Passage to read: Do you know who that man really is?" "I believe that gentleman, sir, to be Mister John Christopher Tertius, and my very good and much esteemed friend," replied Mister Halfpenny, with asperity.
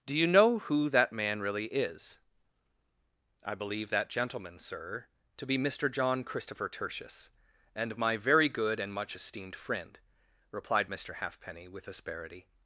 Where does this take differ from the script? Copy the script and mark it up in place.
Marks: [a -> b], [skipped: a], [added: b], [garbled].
Do you know who that man really is?" "I believe that gentleman, sir, to be Mister John Christopher Tertius, and my very good and much esteemed friend," replied Mister Halfpenny, with asperity.